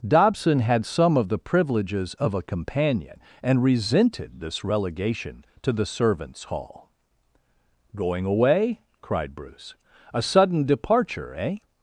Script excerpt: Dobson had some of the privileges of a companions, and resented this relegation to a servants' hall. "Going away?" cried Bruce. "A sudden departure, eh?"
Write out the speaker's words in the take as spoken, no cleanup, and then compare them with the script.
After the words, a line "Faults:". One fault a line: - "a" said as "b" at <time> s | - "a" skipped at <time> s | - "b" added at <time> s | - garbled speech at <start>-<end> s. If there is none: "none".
Dobson had some of the privileges of a companion, and resented this relegation to the servants' hall. "Going away?" cried Bruce. "A sudden departure, eh?"
Faults:
- "companions" said as "companion" at 2.4 s
- "a" said as "the" at 5.7 s